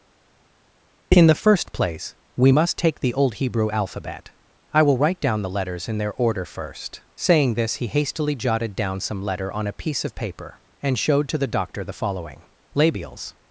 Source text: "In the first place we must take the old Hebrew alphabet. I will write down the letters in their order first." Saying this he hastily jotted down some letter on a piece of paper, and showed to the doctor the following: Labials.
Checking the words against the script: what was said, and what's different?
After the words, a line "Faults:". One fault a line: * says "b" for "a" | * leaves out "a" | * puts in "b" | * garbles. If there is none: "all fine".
"In the first place we must take the old Hebrew alphabet. I will write down the letters in their order first." Saying this he hastily jotted down some letter on a piece of paper, and showed to the doctor the following: Labials.
Faults:
all fine